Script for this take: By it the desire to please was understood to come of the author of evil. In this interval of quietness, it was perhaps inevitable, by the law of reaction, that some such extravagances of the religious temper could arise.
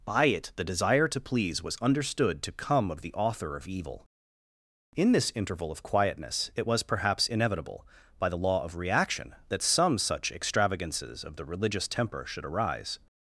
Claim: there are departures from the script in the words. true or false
true